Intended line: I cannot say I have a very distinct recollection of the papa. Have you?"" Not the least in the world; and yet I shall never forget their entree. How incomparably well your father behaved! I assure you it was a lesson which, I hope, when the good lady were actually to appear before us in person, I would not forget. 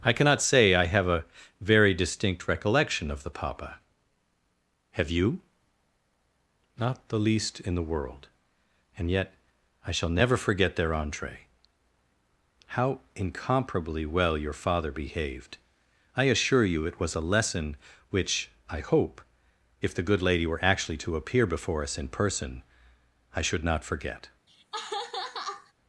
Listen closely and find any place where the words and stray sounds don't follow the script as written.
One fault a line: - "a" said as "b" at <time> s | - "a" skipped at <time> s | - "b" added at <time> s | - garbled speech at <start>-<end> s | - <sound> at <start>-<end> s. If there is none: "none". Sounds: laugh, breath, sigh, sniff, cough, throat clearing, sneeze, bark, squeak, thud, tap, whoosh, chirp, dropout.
- "when" said as "if" at 19.8 s
- "would" said as "should" at 23.4 s
- laugh at 24.5-25.7 s